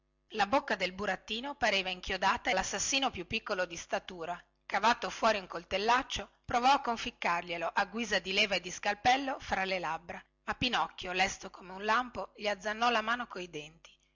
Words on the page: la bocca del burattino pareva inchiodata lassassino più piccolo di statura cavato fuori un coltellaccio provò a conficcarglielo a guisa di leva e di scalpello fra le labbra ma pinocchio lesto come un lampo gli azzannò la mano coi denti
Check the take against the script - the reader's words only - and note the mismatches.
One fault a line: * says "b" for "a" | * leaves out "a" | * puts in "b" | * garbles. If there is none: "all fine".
all fine